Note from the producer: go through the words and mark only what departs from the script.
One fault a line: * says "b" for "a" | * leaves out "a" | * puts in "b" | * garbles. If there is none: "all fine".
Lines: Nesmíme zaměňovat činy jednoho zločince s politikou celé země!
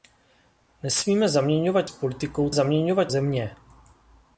* leaves out "činy jednoho zločince"
* says "zaměňovat" for "celé"